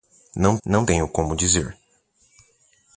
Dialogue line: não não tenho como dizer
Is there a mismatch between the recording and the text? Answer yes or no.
no